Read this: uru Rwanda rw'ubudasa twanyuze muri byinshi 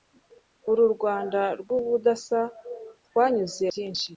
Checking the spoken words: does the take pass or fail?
fail